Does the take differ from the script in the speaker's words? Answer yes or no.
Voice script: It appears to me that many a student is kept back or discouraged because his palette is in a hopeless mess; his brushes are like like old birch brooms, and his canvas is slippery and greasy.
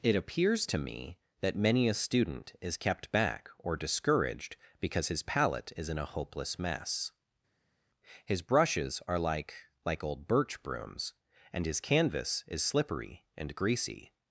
no